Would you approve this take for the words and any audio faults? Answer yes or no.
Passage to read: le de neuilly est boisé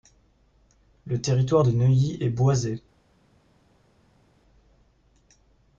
no